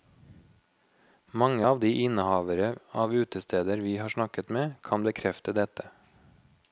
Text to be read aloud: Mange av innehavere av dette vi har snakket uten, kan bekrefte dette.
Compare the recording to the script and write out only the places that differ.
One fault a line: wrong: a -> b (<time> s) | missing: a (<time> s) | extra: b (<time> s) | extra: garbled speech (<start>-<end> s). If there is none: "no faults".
extra: de (1.8 s)
wrong: dette -> utesteder (3.1 s)
wrong: uten -> med (4.5 s)